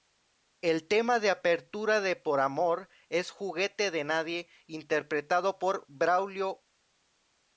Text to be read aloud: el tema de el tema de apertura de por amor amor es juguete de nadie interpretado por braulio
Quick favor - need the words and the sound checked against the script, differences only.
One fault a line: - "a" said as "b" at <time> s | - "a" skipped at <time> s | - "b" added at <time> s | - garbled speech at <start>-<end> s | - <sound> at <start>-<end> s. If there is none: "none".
- "el tema de" skipped at 1.3 s
- "amor" skipped at 2.9 s